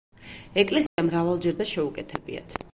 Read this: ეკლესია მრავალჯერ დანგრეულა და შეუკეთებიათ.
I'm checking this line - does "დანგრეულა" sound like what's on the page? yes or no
no